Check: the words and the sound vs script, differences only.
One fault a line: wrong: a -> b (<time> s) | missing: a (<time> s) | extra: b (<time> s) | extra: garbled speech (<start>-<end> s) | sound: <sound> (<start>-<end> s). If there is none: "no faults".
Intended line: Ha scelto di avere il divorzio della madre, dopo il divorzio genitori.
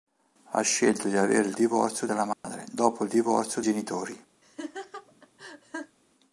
sound: dropout (2.3-2.4 s)
sound: laugh (4.4-6.0 s)